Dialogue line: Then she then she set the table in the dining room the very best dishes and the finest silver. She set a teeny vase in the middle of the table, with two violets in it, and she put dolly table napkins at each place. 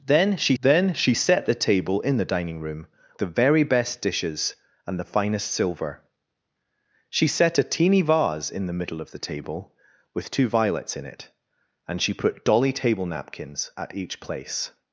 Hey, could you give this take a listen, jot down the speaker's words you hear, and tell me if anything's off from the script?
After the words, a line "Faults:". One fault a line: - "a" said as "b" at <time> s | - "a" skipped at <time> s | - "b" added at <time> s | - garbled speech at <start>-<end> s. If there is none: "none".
Then she then she set the table in the dining room the very best dishes and the finest silver. She set a teeny vase in the middle of the table, with two violets in it, and she put dolly table napkins at each place.
Faults:
none